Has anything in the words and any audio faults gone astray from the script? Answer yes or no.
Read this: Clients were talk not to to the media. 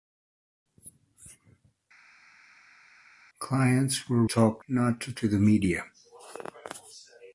no